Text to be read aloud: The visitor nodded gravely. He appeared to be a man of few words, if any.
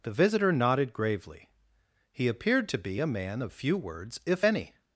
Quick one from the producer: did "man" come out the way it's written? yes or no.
yes